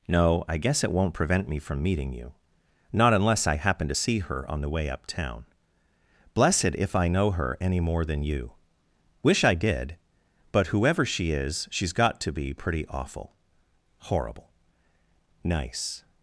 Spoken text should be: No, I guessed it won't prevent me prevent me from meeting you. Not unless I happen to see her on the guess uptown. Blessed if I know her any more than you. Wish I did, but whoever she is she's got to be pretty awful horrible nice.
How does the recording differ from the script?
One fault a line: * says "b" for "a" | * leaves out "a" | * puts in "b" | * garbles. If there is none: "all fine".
* says "guess" for "guessed"
* leaves out "prevent me"
* says "way" for "guess"